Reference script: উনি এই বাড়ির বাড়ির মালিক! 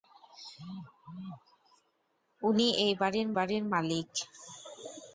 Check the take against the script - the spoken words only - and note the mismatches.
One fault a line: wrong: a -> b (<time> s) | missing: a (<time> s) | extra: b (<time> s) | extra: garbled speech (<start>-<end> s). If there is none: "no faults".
no faults